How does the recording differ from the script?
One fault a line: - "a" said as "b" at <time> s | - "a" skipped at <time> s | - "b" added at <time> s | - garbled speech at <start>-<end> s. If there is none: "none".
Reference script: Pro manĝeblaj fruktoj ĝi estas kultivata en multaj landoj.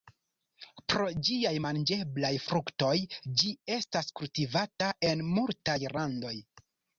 - "ĝiaj" added at 1.3 s